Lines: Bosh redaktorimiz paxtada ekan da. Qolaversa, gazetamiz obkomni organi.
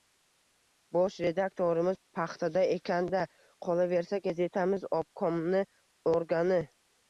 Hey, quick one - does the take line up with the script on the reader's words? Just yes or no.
yes